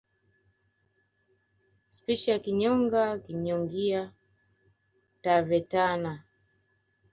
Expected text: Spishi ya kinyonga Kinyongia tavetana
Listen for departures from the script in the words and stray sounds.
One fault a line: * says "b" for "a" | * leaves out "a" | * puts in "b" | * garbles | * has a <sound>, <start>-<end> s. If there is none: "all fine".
all fine